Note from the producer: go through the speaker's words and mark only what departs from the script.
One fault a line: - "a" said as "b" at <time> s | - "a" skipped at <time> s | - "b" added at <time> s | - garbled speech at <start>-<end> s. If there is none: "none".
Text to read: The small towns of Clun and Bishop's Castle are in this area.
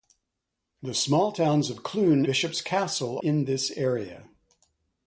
- "and" skipped at 2.2 s
- "are" skipped at 3.2 s